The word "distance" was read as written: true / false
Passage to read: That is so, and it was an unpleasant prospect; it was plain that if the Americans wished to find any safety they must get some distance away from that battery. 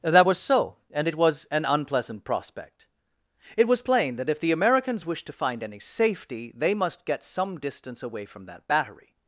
true